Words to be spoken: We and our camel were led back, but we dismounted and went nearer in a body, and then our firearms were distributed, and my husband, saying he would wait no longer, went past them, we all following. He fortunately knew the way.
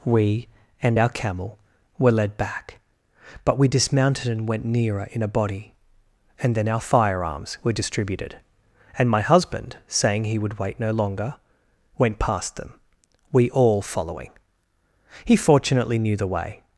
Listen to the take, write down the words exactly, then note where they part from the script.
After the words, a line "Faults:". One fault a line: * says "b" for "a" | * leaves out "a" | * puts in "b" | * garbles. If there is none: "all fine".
We and our camel were led back, but we dismounted and went nearer in a body, and then our firearms were distributed, and my husband, saying he would wait no longer, went past them, we all following. He fortunately knew the way.
Faults:
all fine